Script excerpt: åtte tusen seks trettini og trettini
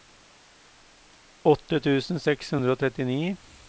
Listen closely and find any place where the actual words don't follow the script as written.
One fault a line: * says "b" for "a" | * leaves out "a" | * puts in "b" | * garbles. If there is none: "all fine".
* says "hundre" for "trettini"